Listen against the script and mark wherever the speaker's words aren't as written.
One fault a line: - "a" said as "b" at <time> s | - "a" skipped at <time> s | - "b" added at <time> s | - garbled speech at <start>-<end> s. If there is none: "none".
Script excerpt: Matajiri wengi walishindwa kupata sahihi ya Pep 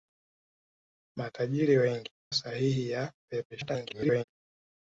- "walishindwa kupata" skipped at 2.1 s
- garbled speech at 3.5-4.2 s